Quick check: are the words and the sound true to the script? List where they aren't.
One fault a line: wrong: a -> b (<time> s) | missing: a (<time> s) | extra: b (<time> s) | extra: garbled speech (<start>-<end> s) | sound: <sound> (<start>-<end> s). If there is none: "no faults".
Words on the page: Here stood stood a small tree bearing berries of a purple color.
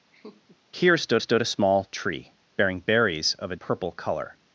sound: laugh (0.1-0.6 s)